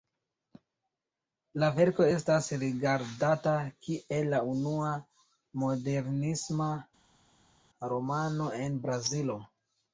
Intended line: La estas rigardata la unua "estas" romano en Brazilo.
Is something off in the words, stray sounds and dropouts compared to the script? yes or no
yes